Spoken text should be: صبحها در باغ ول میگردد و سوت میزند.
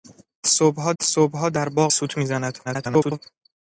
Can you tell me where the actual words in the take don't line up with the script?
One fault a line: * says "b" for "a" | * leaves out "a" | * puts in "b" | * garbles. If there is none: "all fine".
* puts in "صبحها"
* leaves out "ول میگردد و"
* garbles